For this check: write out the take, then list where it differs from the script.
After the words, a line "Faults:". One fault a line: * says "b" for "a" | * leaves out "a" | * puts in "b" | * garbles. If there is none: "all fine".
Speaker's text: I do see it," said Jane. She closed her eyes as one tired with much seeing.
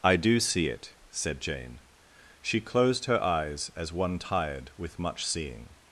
I do see it," said Jane. She closed her eyes as one tired with much seeing.
Faults:
all fine